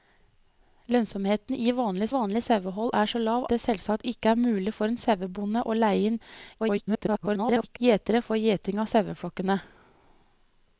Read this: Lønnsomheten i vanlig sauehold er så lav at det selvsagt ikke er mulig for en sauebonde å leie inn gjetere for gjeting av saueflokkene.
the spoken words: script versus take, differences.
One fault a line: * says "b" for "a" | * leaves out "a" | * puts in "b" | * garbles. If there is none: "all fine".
* puts in "vanlig"
* leaves out "at"
* garbles